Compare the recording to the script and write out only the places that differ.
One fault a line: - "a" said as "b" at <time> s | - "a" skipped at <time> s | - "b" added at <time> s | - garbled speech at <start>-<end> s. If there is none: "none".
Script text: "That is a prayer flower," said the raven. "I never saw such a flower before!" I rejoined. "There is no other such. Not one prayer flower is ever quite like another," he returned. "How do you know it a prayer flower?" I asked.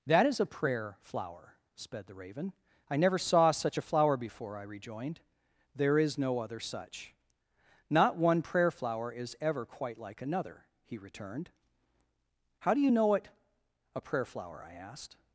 - "said" said as "sped" at 1.8 s